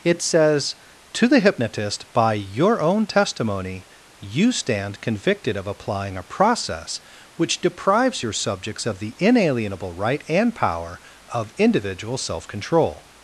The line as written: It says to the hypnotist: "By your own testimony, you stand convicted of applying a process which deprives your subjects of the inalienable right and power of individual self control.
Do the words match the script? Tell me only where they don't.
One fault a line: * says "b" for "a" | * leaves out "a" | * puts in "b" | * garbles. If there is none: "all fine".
all fine